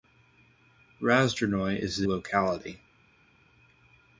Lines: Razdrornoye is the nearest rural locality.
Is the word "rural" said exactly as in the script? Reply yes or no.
no